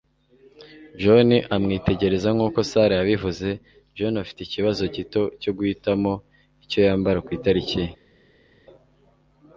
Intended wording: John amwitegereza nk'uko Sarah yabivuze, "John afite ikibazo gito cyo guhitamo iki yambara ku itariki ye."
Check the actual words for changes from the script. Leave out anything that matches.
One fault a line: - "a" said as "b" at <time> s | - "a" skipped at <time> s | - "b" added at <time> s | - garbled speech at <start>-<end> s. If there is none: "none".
- "iki" said as "icyo" at 6.6 s